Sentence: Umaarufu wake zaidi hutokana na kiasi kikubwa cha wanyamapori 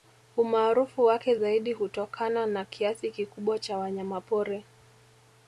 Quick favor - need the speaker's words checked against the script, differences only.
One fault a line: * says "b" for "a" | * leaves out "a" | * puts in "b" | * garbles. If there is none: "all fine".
all fine